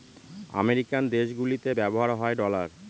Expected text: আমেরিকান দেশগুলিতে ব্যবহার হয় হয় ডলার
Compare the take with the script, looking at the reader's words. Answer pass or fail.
fail